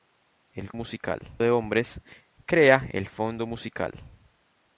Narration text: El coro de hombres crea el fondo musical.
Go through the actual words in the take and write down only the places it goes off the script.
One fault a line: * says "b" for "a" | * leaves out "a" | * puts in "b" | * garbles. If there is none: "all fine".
* says "musical" for "coro"